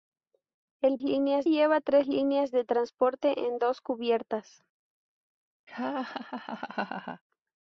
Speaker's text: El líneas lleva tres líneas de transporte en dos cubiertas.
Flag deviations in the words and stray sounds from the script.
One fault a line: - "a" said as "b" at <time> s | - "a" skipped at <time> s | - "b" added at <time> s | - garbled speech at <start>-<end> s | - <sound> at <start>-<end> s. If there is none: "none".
- laugh at 5.7-7.2 s